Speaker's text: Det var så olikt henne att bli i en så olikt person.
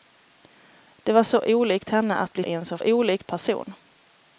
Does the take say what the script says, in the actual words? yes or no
yes